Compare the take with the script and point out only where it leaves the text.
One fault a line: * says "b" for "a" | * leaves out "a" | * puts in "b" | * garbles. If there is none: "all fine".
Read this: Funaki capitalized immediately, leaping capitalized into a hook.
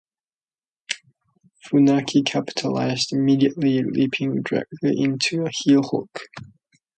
* says "directly" for "capitalized"
* puts in "heel"